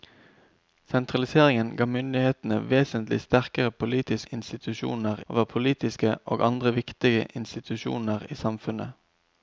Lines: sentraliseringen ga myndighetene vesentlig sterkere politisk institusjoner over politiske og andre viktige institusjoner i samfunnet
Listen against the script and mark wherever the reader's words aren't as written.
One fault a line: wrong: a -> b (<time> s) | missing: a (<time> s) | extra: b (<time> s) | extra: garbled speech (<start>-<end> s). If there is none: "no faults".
no faults